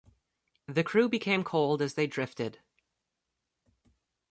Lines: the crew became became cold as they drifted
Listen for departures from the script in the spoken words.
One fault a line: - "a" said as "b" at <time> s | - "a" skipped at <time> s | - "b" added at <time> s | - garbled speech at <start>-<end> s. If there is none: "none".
- "became" skipped at 1.4 s